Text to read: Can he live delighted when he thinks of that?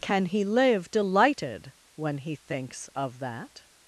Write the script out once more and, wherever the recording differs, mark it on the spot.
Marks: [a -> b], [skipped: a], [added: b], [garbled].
Can he live delighted when he thinks of that?